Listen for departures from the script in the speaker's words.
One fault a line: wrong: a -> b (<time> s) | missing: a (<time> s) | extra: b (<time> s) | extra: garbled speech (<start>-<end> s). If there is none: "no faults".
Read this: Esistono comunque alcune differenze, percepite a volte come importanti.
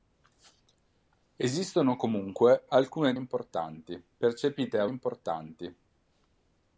wrong: differenze -> importanti (3.1 s)
missing: volte come (4.9 s)